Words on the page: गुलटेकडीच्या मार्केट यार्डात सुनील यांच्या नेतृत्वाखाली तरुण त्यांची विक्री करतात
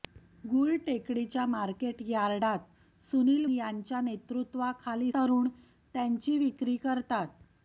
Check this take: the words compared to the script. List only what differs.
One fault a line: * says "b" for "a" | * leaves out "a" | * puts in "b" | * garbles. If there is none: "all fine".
all fine